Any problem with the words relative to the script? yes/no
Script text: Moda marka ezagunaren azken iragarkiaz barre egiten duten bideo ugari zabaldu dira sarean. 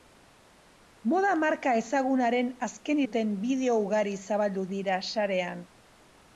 yes